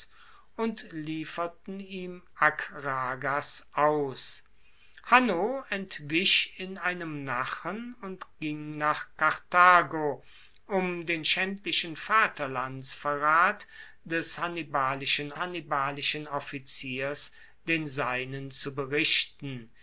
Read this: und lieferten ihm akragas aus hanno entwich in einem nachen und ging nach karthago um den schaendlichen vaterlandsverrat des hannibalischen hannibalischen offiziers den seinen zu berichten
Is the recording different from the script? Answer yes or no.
no